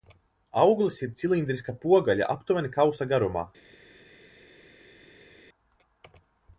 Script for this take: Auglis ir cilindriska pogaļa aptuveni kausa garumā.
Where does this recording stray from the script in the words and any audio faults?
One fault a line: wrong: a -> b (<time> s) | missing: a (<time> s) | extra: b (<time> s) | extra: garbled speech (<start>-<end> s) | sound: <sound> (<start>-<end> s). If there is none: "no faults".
no faults